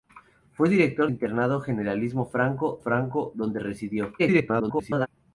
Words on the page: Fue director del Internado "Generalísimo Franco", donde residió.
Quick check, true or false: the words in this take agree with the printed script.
false